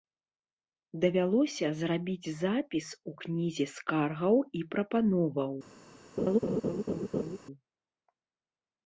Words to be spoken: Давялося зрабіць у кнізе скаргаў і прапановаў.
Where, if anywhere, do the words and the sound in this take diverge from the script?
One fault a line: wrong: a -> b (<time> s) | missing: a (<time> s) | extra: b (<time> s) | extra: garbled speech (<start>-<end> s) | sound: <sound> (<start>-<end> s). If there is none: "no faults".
extra: запіс (2.4 s)
sound: laugh (6.2-7.4 s)